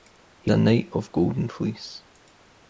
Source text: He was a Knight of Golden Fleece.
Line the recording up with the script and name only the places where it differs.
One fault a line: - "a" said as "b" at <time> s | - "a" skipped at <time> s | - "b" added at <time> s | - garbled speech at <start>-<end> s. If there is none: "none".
- "was" skipped at 0.5 s